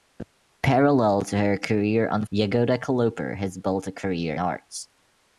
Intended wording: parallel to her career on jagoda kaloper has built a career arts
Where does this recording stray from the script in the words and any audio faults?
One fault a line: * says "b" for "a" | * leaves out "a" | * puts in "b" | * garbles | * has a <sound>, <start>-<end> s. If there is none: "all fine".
all fine